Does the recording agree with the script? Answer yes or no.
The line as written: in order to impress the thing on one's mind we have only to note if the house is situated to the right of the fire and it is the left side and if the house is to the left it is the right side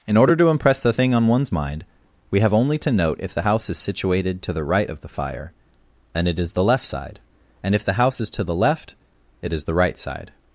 yes